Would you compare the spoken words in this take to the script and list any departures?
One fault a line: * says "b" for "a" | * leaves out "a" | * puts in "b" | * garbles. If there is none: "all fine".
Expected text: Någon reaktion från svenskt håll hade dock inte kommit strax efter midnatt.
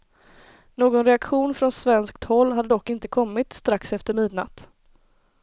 all fine